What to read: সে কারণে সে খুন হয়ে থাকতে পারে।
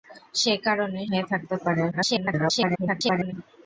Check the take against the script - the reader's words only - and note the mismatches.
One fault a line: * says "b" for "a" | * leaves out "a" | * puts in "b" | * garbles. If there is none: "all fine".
* leaves out "সে খুন"
* garbles